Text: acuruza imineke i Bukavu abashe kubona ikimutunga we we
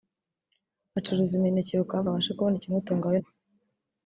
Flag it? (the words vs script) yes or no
no